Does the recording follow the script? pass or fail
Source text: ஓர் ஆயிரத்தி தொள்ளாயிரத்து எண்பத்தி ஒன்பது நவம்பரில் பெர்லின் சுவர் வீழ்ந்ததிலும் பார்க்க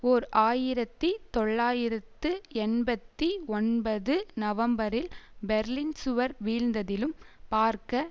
pass